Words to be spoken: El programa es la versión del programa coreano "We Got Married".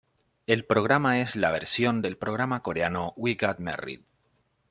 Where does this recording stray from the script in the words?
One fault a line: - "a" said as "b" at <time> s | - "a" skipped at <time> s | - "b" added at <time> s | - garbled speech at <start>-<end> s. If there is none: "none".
none